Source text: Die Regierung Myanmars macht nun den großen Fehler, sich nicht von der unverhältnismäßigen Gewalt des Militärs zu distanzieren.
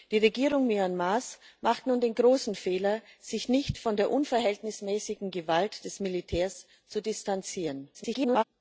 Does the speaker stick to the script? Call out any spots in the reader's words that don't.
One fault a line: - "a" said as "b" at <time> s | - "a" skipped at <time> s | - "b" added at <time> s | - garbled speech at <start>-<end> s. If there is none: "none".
- garbled speech at 7.9-8.4 s